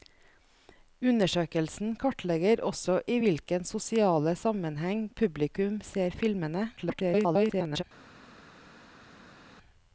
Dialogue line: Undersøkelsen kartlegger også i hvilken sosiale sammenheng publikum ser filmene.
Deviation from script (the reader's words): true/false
true